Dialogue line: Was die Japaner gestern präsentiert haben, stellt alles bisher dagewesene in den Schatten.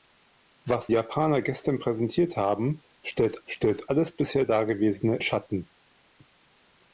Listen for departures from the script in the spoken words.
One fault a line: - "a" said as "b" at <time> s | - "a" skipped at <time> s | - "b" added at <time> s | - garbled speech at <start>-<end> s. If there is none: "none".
- "die" skipped at 0.9 s
- "stellt" added at 3.5 s
- "in den" skipped at 5.2 s